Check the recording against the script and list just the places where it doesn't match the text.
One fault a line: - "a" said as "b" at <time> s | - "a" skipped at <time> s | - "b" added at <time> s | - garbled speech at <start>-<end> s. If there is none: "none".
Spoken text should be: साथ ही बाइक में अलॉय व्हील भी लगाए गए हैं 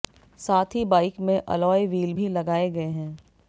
none